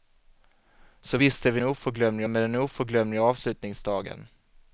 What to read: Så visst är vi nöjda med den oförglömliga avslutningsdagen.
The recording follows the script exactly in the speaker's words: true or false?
false